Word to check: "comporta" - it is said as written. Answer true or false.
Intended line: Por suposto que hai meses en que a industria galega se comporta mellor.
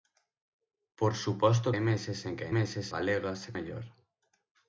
false